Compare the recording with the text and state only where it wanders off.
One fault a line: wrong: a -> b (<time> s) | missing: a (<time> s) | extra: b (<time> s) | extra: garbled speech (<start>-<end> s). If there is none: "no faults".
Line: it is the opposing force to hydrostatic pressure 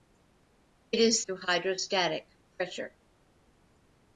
missing: the opposing force (1.2 s)